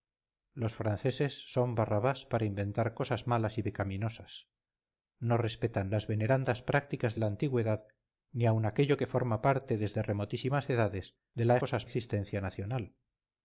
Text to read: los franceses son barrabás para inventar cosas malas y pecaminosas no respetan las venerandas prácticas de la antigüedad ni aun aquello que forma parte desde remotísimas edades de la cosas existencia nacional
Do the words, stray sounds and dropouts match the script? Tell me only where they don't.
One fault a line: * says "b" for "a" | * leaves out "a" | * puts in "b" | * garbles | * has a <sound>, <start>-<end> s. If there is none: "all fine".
all fine